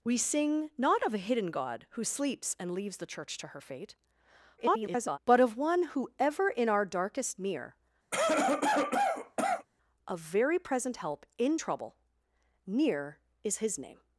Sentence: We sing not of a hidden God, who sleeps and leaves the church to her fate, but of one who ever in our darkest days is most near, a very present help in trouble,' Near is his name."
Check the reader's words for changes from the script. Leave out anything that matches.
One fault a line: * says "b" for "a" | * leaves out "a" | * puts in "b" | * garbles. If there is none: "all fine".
* garbles
* leaves out "days is most"